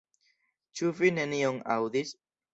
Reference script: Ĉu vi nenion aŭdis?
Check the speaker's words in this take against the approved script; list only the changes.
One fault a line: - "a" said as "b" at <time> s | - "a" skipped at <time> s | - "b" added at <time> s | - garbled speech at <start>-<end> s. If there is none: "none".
none